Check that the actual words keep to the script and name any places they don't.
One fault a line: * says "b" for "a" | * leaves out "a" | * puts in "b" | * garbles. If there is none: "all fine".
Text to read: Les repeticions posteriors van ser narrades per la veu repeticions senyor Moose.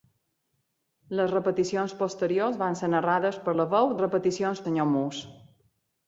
all fine